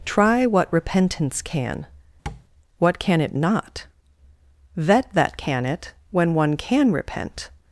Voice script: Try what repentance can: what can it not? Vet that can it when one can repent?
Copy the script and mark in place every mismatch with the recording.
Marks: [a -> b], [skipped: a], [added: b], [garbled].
Try what repentance can: what can it not? Vet that can it when one can repent?